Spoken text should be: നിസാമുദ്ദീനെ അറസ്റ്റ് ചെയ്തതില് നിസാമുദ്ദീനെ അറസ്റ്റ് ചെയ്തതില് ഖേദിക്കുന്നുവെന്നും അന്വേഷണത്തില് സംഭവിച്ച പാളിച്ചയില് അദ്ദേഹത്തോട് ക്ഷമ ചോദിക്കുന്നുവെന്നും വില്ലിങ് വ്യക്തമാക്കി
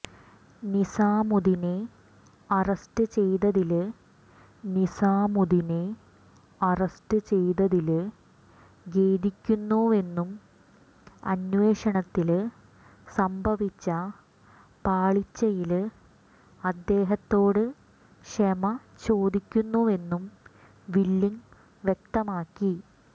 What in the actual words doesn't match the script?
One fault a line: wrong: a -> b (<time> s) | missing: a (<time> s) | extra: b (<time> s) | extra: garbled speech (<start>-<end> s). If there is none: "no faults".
no faults